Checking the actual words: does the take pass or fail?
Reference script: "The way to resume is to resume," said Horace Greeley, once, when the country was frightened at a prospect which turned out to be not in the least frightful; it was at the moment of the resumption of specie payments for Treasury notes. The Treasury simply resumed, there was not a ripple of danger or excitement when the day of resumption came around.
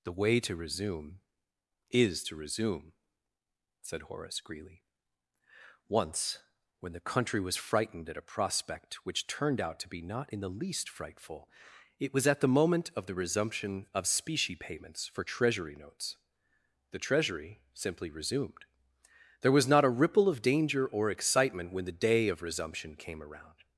pass